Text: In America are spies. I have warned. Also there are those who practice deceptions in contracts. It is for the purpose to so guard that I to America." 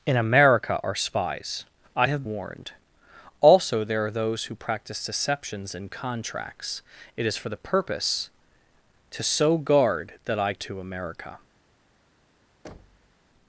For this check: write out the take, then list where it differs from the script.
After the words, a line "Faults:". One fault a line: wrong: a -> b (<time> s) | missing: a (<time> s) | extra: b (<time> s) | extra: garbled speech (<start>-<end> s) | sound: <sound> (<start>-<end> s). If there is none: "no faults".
In America are spies. I have warned. Also there are those who practice deceptions in contracts. It is for the purpose to so guard that I to America."
Faults:
sound: thud (12.6-13.1 s)